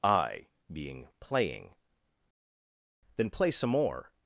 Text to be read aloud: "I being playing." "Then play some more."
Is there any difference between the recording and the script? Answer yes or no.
no